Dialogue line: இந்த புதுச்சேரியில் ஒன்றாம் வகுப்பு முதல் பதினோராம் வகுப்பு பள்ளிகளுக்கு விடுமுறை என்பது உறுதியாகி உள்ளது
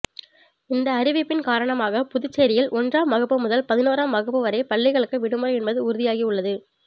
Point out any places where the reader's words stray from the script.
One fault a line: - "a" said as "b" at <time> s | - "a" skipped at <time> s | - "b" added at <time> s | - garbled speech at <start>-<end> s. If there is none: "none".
- "அறிவிப்பின் காரணமாக" added at 0.9 s
- "வரை" added at 4.4 s